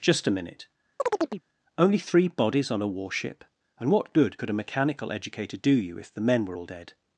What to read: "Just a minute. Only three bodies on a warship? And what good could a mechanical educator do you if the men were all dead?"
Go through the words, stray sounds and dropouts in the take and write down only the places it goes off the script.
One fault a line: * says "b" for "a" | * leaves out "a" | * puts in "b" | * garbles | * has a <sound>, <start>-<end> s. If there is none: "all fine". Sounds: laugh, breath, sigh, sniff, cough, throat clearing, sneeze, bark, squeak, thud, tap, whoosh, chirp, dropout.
* has a chirp, 1.0-1.4 s